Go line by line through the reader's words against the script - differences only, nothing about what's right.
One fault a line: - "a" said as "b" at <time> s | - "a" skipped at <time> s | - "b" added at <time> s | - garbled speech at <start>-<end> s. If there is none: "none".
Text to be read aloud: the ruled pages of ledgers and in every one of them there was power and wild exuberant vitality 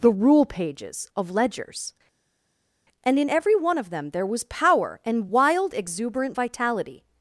- "ruled" said as "rule" at 0.1 s